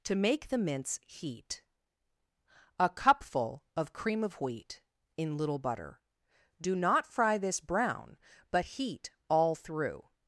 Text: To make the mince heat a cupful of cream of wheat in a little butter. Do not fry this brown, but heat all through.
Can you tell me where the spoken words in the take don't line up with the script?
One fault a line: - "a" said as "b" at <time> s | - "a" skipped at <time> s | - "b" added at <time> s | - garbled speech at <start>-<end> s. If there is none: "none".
- "a" skipped at 5.4 s